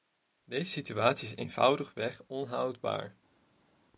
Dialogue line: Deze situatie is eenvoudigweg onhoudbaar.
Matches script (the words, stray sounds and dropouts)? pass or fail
pass